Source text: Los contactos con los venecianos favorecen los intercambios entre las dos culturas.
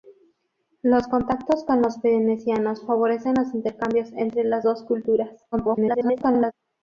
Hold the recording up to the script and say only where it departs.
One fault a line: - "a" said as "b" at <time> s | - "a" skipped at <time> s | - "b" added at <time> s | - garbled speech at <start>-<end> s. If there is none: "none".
- garbled speech at 5.5-6.5 s